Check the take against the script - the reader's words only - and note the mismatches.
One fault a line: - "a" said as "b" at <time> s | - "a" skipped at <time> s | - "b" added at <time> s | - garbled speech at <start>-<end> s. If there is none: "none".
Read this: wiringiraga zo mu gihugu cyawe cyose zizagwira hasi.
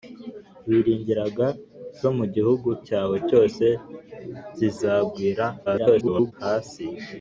- garbled speech at 5.7-6.3 s